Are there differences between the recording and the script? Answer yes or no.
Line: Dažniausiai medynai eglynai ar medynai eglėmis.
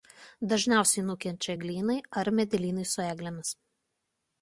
yes